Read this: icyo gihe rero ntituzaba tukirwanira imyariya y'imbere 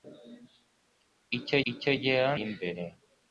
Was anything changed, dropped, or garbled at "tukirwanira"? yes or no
yes